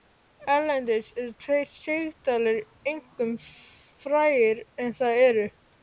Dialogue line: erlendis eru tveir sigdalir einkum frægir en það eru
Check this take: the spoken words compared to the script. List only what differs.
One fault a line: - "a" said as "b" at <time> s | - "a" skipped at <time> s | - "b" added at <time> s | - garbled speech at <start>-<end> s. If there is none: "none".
none